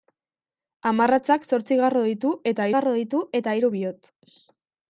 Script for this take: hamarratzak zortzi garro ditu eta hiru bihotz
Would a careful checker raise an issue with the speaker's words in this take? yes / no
yes